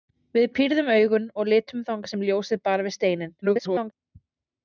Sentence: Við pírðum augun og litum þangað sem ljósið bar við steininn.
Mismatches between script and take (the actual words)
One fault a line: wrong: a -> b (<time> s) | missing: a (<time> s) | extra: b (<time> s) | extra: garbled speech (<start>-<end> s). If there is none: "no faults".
extra: garbled speech (3.4-3.9 s)